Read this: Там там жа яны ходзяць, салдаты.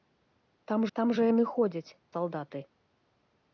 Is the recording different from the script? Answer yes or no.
no